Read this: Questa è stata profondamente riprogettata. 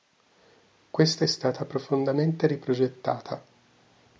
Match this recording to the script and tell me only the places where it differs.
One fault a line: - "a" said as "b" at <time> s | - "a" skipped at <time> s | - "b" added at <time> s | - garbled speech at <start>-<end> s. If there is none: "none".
none